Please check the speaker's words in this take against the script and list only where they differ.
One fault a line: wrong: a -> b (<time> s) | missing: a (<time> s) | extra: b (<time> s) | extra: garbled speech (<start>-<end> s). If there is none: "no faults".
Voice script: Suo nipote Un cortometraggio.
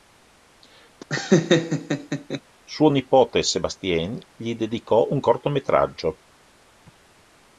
extra: Sébastien gli dedicò (3.4 s)